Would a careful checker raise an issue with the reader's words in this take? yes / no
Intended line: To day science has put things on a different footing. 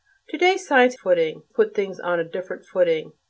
yes